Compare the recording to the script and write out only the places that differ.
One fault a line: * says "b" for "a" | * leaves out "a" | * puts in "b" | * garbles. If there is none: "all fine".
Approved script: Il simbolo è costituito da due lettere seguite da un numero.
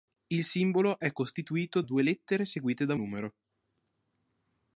* leaves out "da"
* leaves out "un"